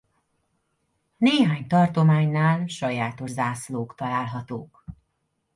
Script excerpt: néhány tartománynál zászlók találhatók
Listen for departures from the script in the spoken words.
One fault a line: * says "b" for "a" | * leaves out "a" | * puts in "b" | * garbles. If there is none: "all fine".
* puts in "sajátos"